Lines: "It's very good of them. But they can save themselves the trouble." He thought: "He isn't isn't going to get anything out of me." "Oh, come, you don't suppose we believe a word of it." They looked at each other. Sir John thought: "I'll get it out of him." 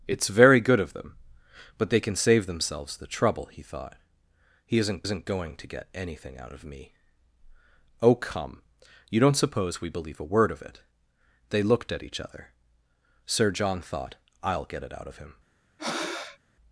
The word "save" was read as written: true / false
true